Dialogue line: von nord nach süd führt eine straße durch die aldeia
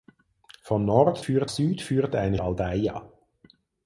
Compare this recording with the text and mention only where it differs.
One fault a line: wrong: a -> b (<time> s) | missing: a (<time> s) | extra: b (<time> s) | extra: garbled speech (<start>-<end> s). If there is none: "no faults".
wrong: nach -> führt (1.2 s)
missing: straße durch die (2.4 s)